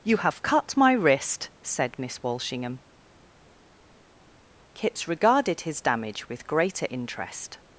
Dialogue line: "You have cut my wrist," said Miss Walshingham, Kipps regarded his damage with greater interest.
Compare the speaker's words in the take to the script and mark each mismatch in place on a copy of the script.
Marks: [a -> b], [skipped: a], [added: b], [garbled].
"You have cut my wrist," said Miss Walshingham, Kipps regarded his damage with greater interest.